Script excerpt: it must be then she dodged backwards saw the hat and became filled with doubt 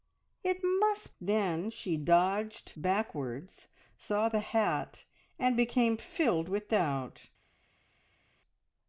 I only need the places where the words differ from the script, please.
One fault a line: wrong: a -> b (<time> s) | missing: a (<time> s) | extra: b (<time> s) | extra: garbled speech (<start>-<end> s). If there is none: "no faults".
missing: be (1.1 s)